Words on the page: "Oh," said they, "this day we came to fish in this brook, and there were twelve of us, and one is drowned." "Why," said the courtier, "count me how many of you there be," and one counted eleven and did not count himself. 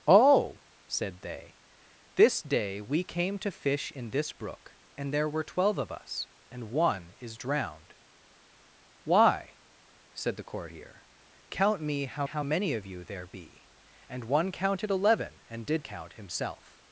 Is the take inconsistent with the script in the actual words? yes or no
yes